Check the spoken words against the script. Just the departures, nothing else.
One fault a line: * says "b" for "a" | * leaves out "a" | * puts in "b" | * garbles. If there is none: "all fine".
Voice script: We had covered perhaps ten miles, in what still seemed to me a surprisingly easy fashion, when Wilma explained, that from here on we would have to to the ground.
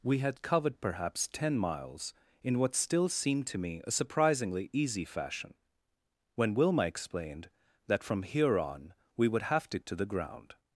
all fine